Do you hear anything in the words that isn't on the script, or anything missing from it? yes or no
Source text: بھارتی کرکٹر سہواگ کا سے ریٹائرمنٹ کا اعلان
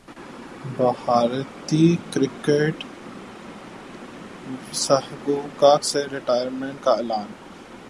no